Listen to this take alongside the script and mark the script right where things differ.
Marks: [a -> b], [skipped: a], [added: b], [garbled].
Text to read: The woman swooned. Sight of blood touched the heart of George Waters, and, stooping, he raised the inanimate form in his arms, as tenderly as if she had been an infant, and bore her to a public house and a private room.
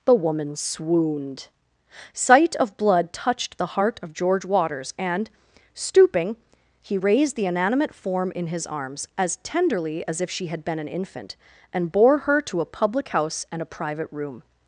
The woman swooned. Sight of blood touched the heart of George Waters, and, stooping, he raised the inanimate form in his arms, as tenderly as if she had been an infant, and bore her to a public house and a private room.